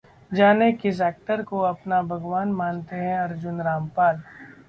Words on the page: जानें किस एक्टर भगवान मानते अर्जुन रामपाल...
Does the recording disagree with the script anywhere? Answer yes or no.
yes